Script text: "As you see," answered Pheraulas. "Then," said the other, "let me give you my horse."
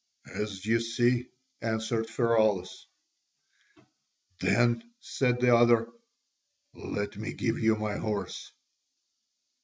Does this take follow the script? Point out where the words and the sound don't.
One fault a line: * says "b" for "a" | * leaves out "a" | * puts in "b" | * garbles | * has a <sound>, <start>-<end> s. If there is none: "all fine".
all fine